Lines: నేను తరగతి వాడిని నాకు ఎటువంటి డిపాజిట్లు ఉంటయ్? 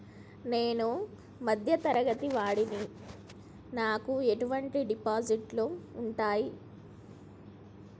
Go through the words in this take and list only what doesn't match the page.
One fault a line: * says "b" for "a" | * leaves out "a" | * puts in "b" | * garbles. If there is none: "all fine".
* puts in "మధ్య"